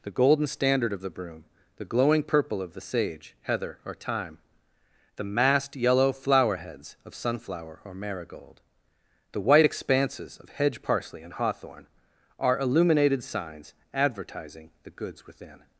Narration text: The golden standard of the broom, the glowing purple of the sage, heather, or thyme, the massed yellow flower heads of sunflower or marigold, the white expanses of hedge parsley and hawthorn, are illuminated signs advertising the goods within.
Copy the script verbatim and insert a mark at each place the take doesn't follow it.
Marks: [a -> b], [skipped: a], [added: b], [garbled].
The golden standard of the broom, the glowing purple of the sage, heather, or thyme, the massed yellow flower heads of sunflower or marigold, the white expanses of hedge parsley and hawthorn, are illuminated signs advertising the goods within.